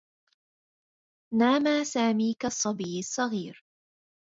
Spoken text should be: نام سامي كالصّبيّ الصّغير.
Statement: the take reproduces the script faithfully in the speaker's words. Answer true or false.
true